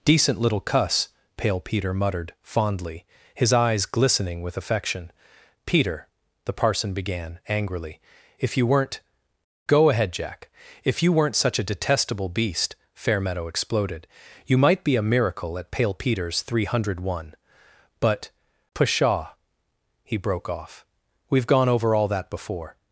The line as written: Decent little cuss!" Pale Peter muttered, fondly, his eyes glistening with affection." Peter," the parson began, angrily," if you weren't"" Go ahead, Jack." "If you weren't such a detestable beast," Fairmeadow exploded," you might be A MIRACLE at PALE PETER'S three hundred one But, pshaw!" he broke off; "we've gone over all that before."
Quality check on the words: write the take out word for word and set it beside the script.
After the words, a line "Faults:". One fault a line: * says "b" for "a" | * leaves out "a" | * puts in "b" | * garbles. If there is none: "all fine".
Decent little cuss!" Pale Peter muttered, fondly, his eyes glistening with affection." Peter," the parson began, angrily," if you weren't"" Go ahead, Jack." "If you weren't such a detestable beast," Fairmeadow exploded," you might be A MIRACLE at PALE PETER'S three hundred one But, pshaw!" he broke off; "we've gone over all that before."
Faults:
all fine